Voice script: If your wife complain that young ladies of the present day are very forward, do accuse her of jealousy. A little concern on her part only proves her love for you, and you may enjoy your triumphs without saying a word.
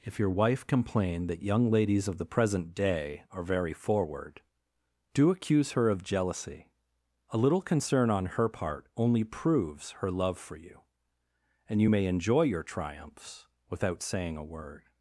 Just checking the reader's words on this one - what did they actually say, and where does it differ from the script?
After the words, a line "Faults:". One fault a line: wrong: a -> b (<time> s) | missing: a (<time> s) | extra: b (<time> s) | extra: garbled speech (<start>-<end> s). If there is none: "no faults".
If your wife complain that young ladies of the present day are very forward, do accuse her of jealousy. A little concern on her part only proves her love for you, and you may enjoy your triumphs without saying a word.
Faults:
no faults